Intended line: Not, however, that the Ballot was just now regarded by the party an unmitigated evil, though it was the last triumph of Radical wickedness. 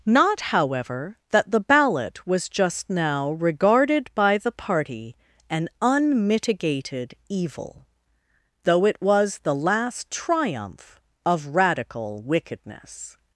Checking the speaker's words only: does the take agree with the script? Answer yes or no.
yes